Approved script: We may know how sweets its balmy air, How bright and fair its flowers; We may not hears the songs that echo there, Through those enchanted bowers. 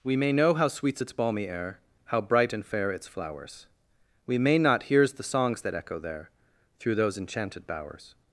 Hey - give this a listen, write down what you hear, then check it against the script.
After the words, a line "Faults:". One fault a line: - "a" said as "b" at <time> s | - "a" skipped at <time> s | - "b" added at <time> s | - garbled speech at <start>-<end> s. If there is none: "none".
We may know how sweets its balmy air, How bright and fair its flowers; We may not hears the songs that echo there, Through those enchanted bowers.
Faults:
none